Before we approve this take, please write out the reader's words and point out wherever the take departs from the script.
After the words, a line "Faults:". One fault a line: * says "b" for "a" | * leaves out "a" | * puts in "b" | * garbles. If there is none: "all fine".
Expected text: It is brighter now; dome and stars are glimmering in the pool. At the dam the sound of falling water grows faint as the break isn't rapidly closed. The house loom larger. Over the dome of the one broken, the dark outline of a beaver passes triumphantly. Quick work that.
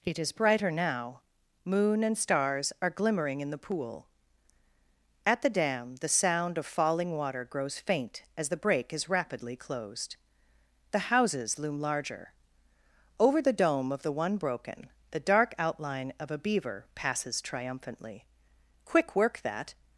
It is brighter now; moon and stars are glimmering in the pool. At the dam the sound of falling water grows faint as the break is rapidly closed. The houses loom larger. Over the dome of the one broken, the dark outline of a beaver passes triumphantly. Quick work that.
Faults:
* says "moon" for "dome"
* says "is" for "isn't"
* says "houses" for "house"